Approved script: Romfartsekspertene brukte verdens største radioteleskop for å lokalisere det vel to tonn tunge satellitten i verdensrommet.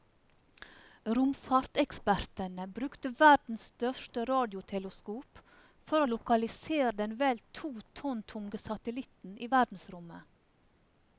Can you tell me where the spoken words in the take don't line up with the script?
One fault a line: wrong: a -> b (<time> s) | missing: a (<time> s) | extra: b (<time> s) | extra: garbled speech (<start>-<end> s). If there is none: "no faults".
wrong: det -> den (7.0 s)